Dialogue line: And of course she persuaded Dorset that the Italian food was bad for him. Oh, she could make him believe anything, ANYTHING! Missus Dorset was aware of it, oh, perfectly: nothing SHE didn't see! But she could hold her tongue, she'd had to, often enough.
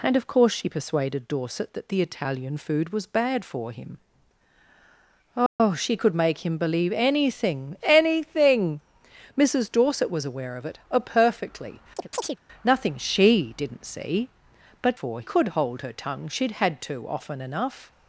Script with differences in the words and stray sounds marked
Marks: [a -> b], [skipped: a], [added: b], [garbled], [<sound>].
And of course she persuaded Dorset that the Italian food was bad for him. Oh, [dropout] she could make him believe anything, ANYTHING! Missus Dorset was aware of it, oh, perfectly: [chirp] nothing SHE didn't see! But [she -> for] could hold her tongue, she'd had to, often enough.